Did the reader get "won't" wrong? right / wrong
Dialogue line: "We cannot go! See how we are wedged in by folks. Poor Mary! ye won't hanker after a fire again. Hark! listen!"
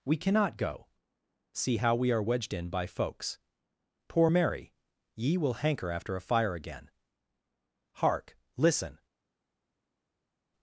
wrong